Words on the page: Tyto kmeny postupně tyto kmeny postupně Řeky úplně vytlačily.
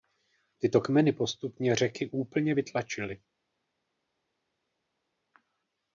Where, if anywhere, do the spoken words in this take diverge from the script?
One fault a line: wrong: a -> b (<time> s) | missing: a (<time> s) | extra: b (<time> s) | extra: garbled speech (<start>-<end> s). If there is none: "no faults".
missing: tyto kmeny postupně (1.8 s)